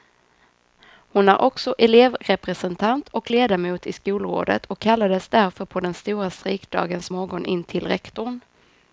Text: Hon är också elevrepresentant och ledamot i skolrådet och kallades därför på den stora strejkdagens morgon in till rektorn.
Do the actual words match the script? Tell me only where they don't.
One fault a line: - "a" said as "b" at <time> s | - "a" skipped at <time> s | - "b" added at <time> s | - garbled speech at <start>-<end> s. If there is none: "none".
none